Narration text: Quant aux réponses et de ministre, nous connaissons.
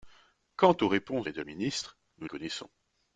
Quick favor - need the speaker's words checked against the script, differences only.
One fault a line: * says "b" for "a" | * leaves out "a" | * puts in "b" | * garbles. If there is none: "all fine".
all fine